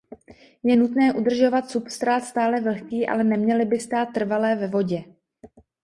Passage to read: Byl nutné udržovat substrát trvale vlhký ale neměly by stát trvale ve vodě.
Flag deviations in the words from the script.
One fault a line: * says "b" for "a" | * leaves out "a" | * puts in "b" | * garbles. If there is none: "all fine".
* says "Je" for "Byl"
* says "stále" for "trvale"